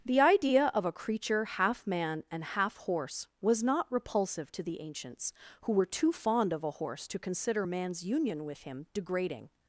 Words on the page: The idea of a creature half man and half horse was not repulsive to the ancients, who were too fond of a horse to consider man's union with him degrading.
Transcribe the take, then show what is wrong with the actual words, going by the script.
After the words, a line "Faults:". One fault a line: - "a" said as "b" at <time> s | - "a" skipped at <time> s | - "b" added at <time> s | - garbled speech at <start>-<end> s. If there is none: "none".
The idea of a creature half man and half horse was not repulsive to the ancients, who were too fond of a horse to consider man's union with him degrading.
Faults:
none